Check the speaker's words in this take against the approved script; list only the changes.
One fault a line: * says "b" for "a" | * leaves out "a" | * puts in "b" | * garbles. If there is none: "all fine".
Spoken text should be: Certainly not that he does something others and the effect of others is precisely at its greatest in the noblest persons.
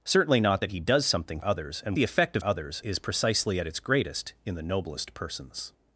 all fine